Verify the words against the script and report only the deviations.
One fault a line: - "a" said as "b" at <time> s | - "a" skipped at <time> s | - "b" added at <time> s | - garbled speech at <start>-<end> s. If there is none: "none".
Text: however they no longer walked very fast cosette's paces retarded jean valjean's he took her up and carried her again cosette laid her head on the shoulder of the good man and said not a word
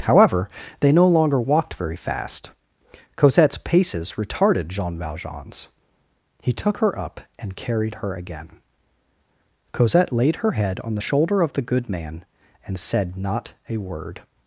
none